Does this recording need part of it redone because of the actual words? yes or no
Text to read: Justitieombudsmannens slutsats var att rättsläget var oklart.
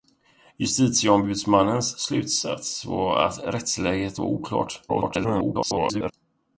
yes